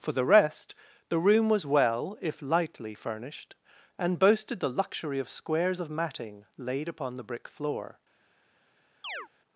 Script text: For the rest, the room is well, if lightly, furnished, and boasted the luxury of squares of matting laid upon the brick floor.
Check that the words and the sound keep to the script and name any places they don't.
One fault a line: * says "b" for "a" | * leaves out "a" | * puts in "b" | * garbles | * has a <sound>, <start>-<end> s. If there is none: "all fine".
* says "was" for "is"
* has a chirp, 9.0-9.3 s